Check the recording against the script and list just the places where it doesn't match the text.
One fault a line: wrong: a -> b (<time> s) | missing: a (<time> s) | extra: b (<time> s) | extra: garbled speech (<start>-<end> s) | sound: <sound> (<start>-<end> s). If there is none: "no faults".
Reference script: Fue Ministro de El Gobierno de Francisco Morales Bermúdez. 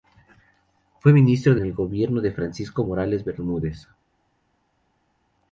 no faults